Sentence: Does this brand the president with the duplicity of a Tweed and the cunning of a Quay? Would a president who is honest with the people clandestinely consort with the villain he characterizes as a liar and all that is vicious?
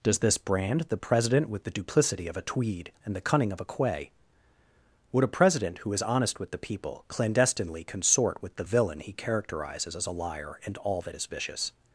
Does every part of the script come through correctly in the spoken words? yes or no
yes